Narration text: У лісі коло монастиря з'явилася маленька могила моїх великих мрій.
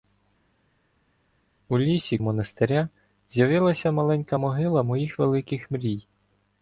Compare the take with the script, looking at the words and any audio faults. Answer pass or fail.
fail